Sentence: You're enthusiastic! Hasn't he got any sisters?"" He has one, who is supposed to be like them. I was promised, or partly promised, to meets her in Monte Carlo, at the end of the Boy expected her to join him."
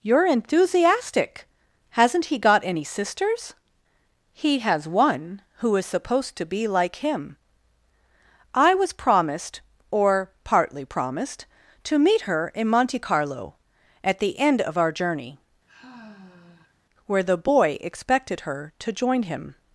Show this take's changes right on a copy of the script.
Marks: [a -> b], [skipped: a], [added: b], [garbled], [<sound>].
You're enthusiastic! Hasn't he got any sisters?"" He has one, who is supposed to be like [them. -> him] I was promised, or partly promised, to [meets -> meet] her in Monte Carlo, at the end of [added: our journey where] [sigh] the Boy expected her to join him."